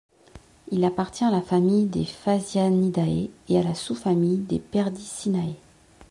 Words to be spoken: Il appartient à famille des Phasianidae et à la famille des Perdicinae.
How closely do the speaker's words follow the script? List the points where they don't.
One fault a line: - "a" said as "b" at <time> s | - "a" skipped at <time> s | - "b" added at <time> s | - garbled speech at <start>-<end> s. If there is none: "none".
- "la" added at 1.3 s
- "sous" added at 3.7 s